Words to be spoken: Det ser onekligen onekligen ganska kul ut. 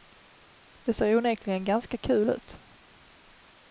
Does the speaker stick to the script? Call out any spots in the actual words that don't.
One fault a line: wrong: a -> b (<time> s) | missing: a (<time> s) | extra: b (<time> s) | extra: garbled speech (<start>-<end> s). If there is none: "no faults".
missing: onekligen (1.6 s)